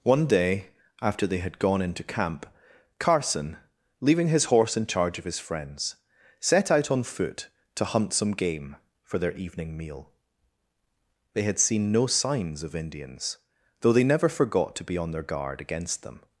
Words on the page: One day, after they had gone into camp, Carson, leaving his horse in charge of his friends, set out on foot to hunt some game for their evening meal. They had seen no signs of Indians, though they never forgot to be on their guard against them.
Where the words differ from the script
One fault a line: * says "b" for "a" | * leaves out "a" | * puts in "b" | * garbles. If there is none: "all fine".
all fine